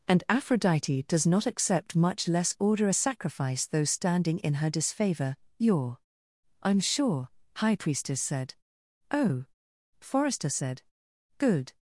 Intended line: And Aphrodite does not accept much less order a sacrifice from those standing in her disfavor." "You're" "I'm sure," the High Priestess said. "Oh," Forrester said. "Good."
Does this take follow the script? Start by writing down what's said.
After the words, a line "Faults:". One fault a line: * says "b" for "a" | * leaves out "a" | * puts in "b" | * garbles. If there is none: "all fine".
And Aphrodite does not accept much less order a sacrifice those standing in her disfavor." "You're" "I'm sure," High Priestess said. "Oh," Forrester said. "Good."
Faults:
* leaves out "from"
* leaves out "the"